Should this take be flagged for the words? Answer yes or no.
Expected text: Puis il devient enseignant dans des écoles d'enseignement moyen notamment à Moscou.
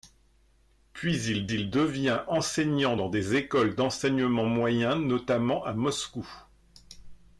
yes